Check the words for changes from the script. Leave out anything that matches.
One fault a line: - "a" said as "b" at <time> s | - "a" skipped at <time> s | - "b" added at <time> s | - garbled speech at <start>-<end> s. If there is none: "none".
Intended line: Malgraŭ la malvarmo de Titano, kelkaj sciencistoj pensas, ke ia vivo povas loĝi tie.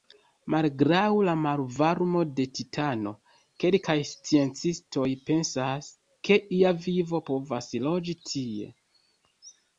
none